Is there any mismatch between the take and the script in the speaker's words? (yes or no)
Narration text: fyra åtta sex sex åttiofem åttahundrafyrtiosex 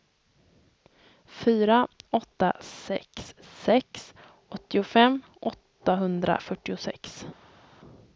no